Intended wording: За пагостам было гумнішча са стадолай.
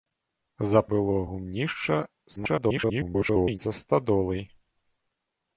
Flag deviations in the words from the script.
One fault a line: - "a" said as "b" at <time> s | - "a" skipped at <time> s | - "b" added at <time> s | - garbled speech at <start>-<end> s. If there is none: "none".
- "пагостам" skipped at 0.8 s
- garbled speech at 2.4-3.6 s